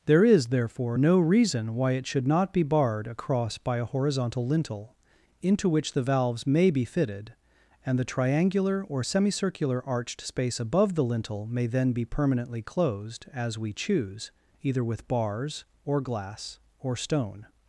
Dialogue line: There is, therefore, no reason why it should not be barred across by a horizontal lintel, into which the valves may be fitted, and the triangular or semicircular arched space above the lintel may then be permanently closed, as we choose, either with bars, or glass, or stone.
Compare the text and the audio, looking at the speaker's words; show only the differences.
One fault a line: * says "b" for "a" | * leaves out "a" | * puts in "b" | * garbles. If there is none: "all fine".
all fine